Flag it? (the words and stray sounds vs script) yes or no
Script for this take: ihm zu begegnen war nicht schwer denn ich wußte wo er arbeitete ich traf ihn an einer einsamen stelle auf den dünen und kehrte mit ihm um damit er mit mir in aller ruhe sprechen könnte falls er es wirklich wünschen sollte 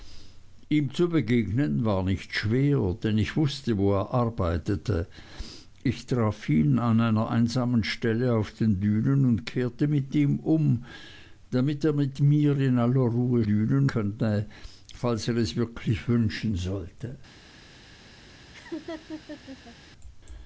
yes